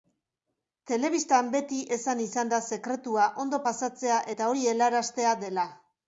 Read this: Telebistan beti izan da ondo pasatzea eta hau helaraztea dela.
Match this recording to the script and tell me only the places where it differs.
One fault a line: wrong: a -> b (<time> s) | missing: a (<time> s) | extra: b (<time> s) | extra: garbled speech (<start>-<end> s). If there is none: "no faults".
extra: esan (2.0 s)
extra: sekretua (2.8 s)
wrong: hau -> hori (4.5 s)